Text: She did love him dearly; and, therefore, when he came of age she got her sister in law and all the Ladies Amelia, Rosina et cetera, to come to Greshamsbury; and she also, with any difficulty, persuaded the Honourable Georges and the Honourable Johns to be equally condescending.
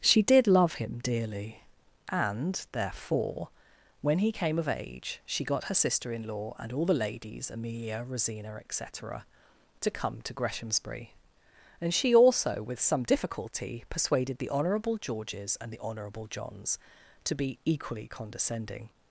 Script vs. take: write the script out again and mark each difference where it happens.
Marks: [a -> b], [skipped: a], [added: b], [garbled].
She did love him dearly; and, therefore, when he came of age she got her sister in law and all the Ladies Amelia, Rosina et cetera, to come to Greshamsbury; and she also, with [any -> some] difficulty, persuaded the Honourable Georges and the Honourable Johns to be equally condescending.